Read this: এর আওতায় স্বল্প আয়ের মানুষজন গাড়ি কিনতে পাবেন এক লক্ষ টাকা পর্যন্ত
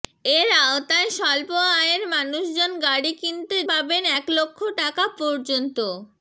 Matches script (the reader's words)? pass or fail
pass